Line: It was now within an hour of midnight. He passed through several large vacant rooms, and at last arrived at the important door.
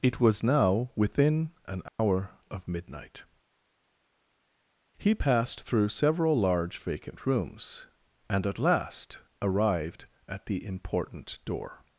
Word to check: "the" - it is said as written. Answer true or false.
true